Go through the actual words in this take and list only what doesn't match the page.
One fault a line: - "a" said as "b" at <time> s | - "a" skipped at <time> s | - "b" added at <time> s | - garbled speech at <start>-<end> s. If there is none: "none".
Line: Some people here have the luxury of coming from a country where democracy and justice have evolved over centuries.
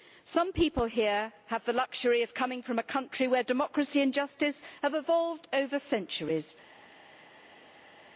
none